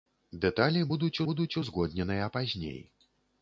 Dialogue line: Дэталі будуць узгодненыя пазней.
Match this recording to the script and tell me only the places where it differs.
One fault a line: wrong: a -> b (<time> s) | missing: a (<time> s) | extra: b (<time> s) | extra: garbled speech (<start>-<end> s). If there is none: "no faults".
extra: будуць (1.3 s)